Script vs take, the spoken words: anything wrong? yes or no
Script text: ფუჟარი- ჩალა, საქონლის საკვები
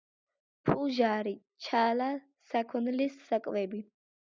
no